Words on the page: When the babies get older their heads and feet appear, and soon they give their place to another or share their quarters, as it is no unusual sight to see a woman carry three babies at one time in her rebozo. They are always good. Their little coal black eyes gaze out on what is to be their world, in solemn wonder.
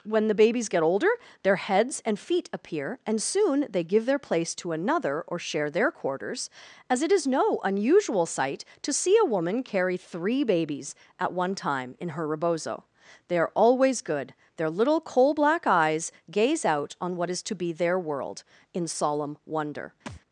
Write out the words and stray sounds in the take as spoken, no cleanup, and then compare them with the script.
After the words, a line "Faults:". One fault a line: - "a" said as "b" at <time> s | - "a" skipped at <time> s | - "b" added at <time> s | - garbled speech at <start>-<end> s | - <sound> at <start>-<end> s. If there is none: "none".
When the babies get older their heads and feet appear, and soon they give their place to another or share their quarters, as it is no unusual sight to see a woman carry three babies at one time in her rebozo. They are always good. Their little coal black eyes gaze out on what is to be their world, in solemn wonder.
Faults:
- thud at 20.1-20.2 s